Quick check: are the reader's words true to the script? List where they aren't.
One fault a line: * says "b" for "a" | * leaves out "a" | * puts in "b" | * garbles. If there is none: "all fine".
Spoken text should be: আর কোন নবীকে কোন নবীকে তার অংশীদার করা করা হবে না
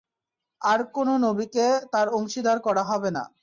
* leaves out "কোন নবীকে"
* leaves out "করা"